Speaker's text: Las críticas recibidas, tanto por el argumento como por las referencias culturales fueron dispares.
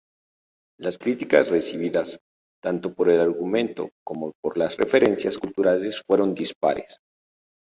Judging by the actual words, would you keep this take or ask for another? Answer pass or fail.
pass